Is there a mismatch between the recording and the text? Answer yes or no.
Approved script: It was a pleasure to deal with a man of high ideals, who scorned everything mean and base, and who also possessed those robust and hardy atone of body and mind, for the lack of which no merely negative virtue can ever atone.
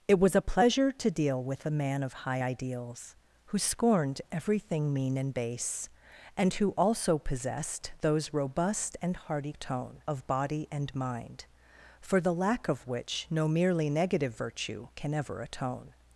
no